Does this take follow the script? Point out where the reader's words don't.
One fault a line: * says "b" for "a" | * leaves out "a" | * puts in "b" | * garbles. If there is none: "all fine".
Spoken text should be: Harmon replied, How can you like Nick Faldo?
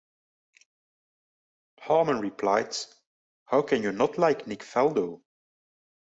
* puts in "not"